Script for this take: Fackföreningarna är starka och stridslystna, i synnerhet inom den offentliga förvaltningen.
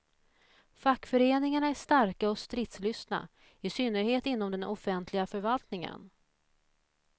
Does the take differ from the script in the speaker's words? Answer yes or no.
no